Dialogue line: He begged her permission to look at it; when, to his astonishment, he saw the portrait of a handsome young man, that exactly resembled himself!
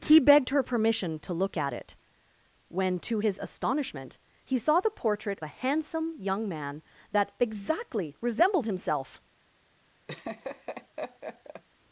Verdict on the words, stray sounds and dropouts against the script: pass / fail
fail